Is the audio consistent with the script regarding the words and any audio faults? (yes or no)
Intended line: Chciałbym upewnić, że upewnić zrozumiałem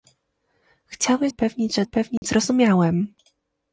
no